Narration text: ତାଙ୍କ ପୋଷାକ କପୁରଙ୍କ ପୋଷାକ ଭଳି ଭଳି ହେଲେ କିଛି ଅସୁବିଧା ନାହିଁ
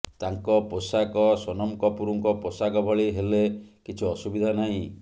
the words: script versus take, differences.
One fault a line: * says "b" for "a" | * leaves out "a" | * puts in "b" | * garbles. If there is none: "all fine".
* puts in "ସୋନମ"
* leaves out "ଭଳି"